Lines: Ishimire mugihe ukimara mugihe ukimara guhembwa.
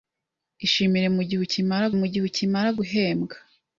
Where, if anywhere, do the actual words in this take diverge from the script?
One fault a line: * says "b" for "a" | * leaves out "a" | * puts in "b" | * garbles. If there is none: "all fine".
all fine